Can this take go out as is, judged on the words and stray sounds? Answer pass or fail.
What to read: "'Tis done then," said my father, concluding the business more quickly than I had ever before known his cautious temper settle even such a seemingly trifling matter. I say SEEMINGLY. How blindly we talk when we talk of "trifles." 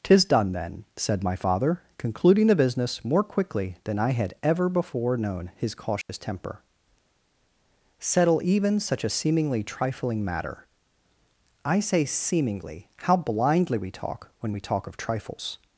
fail